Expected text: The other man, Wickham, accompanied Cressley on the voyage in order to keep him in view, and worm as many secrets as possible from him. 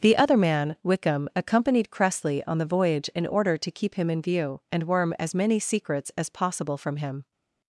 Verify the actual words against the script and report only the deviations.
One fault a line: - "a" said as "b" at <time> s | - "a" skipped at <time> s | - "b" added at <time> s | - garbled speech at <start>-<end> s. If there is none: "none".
none